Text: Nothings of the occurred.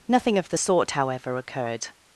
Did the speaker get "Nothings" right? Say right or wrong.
wrong